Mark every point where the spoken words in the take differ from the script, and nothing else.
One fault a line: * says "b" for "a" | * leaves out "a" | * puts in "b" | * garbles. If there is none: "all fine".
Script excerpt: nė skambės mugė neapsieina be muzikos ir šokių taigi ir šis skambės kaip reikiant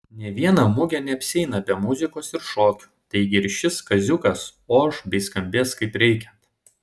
* says "viena" for "skambės"
* puts in "kaziukas oš bei"